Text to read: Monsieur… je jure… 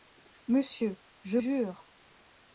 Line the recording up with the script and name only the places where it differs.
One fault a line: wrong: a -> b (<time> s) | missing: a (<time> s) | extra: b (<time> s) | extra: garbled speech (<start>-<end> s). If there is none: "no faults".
no faults